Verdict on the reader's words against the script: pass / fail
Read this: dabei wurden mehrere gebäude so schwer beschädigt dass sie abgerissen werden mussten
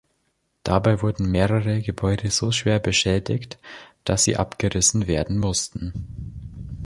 pass